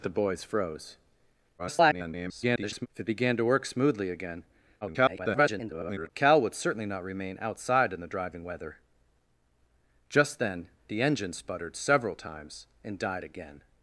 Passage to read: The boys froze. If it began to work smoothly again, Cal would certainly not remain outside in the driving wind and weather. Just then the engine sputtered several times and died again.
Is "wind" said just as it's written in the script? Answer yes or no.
no